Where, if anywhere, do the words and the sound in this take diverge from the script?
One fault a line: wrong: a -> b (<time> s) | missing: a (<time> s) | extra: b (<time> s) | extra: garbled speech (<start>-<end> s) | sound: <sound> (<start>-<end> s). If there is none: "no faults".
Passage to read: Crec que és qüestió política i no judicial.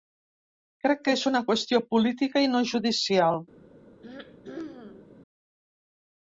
extra: una (1.3 s)
sound: throat clearing (4.0-5.2 s)